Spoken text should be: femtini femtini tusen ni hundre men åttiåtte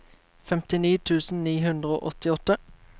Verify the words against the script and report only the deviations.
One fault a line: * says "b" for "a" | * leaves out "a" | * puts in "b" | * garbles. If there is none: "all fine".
* leaves out "femtini"
* says "og" for "men"